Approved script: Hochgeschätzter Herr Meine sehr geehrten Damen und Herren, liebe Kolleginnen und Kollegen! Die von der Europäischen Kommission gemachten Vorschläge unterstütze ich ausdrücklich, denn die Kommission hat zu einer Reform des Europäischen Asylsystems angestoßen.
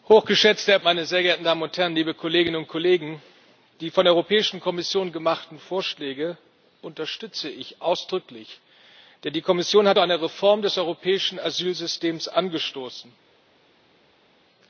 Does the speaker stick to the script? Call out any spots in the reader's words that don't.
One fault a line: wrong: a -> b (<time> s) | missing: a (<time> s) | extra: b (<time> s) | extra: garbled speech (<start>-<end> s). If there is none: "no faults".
no faults